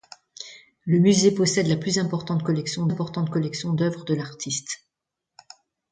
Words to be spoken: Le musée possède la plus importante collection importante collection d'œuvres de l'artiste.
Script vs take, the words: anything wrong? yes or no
no